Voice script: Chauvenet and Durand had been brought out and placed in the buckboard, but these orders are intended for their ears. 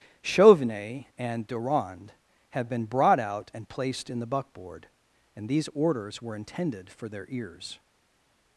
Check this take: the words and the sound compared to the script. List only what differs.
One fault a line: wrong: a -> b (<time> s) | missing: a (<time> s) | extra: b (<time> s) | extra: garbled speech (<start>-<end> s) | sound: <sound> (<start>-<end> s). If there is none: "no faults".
wrong: but -> and (5.3 s)
wrong: are -> were (6.2 s)